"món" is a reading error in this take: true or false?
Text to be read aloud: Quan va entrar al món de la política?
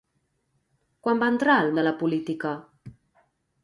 true